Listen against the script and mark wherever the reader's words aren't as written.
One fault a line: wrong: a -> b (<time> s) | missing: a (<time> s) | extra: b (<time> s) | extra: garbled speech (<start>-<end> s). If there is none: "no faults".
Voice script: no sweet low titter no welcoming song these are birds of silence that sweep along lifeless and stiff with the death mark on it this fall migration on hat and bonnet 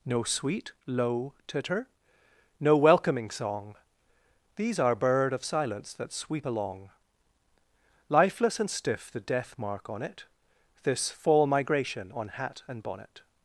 wrong: birds -> bird (5.0 s)
missing: with (9.1 s)